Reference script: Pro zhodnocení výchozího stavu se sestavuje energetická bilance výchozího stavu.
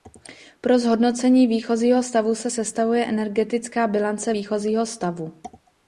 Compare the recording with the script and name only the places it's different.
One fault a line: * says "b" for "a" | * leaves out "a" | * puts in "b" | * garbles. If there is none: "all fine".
all fine